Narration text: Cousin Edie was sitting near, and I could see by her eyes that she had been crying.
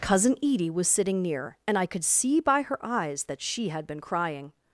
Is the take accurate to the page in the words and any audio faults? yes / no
yes